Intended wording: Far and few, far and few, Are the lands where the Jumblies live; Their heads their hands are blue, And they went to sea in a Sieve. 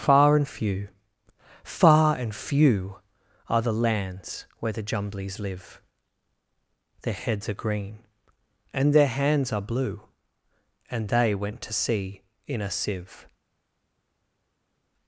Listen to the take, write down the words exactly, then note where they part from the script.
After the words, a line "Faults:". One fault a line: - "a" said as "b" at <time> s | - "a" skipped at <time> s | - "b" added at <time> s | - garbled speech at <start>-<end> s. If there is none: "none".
Far and few, far and few, Are the lands where the Jumblies live; Their heads are green, and their hands are blue, And they went to sea in a Sieve.
Faults:
- "are green and" added at 7.5 s